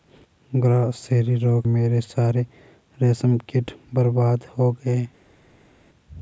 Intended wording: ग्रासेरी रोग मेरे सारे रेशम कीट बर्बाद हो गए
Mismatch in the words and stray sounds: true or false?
false